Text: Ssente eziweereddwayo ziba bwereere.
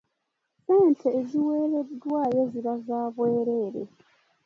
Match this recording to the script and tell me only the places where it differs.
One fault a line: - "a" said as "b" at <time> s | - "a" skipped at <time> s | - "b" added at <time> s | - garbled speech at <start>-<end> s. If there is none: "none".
- "za" added at 2.9 s